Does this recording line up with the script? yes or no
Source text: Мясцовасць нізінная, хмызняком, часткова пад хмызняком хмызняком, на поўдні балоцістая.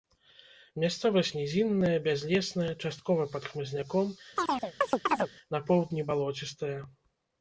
no